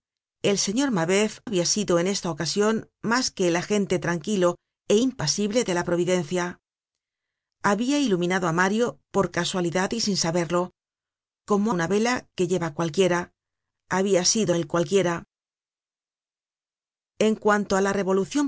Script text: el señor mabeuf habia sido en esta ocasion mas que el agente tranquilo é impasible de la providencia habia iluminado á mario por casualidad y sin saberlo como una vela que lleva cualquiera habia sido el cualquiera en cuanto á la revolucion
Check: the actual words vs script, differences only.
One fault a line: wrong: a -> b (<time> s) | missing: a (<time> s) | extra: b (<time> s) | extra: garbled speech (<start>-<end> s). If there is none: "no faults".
no faults